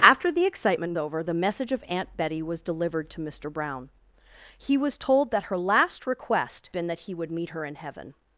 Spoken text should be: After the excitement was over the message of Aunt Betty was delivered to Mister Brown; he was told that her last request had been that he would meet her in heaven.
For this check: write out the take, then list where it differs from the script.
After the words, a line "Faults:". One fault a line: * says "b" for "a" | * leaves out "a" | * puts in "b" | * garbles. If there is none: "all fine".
After the excitement over the message of Aunt Betty was delivered to Mister Brown; he was told that her last request been that he would meet her in heaven.
Faults:
* leaves out "was"
* leaves out "had"